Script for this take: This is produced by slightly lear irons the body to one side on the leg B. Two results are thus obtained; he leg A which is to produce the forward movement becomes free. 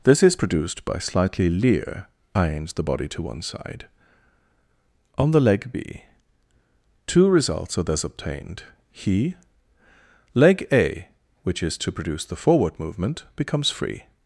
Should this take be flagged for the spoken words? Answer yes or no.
no